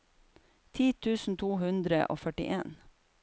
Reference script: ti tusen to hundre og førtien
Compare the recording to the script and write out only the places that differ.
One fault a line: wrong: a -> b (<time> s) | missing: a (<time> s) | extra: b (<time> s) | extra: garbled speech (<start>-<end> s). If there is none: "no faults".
no faults